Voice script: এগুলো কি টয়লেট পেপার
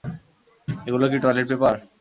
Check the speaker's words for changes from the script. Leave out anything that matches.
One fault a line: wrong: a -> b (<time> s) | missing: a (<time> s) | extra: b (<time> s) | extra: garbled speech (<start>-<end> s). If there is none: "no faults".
no faults